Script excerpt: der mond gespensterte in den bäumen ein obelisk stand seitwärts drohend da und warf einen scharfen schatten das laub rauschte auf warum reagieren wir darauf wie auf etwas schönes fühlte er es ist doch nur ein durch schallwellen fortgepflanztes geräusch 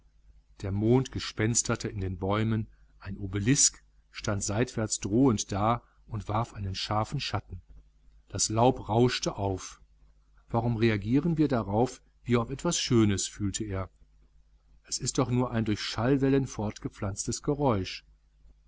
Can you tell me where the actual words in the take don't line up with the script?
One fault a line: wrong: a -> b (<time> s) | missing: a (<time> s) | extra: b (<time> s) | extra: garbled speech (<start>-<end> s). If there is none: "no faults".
no faults